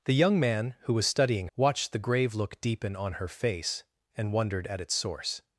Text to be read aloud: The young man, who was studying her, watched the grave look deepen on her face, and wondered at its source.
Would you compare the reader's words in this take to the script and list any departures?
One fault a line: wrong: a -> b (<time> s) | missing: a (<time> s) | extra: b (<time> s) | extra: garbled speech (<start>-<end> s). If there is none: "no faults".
missing: her (1.5 s)